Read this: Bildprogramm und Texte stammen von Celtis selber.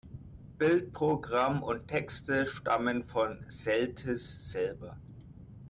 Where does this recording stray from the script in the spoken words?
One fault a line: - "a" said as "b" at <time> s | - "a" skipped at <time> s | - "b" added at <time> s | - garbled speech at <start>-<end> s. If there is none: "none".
none